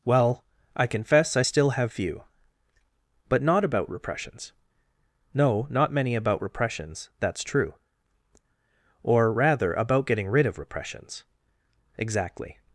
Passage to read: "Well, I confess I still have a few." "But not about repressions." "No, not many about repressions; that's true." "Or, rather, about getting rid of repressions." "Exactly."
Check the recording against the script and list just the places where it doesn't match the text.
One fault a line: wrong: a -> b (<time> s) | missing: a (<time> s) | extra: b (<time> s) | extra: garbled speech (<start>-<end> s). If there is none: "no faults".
missing: a (1.9 s)